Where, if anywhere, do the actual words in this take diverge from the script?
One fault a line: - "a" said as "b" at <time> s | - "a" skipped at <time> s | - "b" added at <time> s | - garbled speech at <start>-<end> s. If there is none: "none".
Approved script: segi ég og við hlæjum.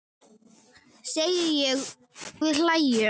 - "og" skipped at 1.8 s